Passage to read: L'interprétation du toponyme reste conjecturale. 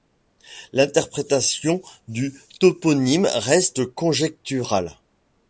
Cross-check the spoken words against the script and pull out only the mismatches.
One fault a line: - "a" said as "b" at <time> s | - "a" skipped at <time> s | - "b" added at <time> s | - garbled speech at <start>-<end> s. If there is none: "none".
none